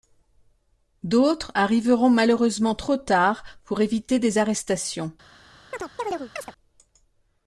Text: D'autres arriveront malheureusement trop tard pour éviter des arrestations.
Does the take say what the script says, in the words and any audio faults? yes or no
no